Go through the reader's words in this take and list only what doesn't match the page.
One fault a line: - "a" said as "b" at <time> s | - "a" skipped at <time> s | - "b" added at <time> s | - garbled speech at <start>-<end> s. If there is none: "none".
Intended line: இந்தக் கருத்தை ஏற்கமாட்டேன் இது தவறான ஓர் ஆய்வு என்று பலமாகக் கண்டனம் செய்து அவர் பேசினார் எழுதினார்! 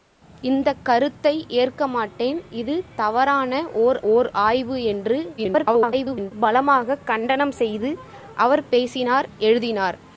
- "ஓர்" added at 4.1 s
- garbled speech at 5.4-6.3 s